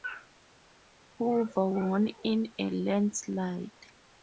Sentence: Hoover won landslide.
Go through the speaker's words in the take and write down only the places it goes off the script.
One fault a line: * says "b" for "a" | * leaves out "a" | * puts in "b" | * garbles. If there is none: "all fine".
* puts in "in a"